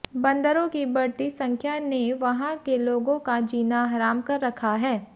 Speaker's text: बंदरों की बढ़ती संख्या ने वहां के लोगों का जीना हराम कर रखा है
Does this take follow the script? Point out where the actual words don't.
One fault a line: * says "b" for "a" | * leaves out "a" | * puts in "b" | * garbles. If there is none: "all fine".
all fine